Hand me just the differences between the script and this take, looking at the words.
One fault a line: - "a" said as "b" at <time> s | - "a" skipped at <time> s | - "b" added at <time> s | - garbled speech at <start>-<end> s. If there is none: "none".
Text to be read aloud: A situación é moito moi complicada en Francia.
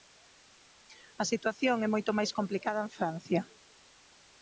- "moi" said as "máis" at 2.2 s